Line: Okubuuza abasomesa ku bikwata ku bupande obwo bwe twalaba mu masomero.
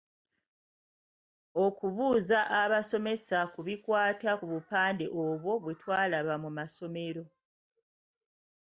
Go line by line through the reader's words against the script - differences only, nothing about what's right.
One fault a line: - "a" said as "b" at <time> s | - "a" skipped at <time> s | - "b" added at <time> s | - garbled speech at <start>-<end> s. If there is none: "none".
none